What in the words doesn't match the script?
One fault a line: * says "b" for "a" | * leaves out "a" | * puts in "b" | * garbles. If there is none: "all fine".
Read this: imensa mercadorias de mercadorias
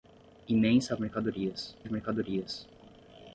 all fine